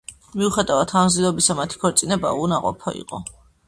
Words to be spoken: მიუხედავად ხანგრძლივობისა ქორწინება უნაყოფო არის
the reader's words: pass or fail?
fail